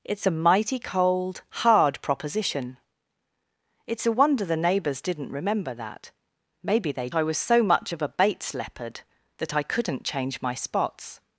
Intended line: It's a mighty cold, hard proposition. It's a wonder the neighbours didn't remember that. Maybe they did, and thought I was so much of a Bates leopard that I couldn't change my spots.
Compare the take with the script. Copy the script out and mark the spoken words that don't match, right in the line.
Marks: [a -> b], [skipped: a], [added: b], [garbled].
It's a mighty cold, hard proposition. It's a wonder the neighbours didn't remember that. Maybe they [skipped: did, and thought] I was so much of a Bates leopard that I couldn't change my spots.